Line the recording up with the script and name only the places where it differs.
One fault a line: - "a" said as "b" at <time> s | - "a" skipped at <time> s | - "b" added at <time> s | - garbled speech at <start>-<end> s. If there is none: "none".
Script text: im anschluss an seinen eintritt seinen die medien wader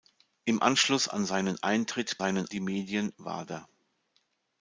none